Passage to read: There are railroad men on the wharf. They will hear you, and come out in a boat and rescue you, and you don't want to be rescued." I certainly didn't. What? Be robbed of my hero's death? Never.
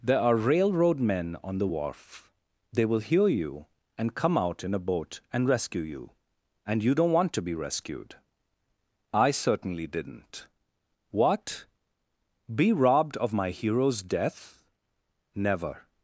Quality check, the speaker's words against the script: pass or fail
pass